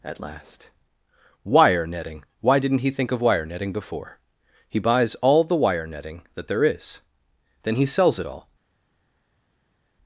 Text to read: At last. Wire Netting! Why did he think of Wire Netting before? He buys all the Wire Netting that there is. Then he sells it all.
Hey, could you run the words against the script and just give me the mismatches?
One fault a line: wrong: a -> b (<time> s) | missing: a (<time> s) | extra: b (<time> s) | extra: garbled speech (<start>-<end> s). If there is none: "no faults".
wrong: did -> didn't (2.6 s)